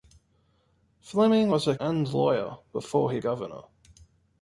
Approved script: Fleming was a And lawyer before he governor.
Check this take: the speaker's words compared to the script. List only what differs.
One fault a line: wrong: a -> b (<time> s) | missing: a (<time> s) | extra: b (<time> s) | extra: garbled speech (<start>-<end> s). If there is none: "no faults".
no faults